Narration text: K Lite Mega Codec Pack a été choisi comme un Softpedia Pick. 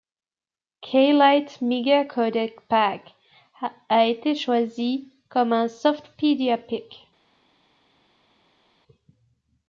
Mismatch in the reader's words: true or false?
false